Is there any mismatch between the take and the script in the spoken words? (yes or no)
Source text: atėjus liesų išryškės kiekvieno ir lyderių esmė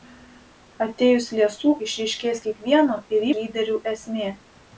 no